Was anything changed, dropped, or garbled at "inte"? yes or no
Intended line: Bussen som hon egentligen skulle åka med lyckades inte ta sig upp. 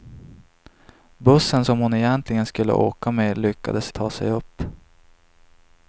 yes